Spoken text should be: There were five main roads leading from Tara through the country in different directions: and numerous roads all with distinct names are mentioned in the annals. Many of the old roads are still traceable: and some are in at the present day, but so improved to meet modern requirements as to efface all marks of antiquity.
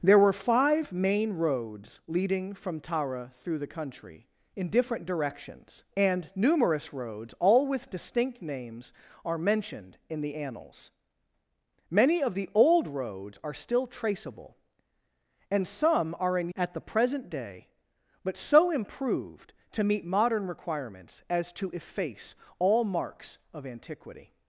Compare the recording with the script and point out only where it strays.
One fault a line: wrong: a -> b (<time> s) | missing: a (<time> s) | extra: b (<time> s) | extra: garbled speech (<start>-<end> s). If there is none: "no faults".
no faults